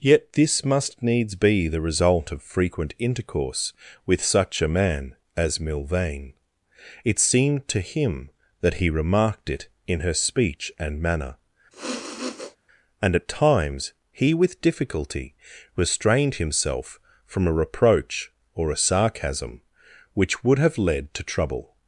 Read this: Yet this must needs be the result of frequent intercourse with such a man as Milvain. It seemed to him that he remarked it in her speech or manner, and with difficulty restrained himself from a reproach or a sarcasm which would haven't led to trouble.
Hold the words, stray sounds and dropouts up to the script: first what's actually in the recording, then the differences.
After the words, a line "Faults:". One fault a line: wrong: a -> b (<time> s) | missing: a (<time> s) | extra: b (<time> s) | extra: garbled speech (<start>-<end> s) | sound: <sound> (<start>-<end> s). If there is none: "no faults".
Yet this must needs be the result of frequent intercourse with such a man as Milvain. It seemed to him that he remarked it in her speech and manner, and at times he with difficulty restrained himself from a reproach or a sarcasm which would have led to trouble.
Faults:
wrong: or -> and (10.8 s)
sound: sniff (11.7-12.6 s)
extra: at times he (13.2 s)
wrong: haven't -> have (20.6 s)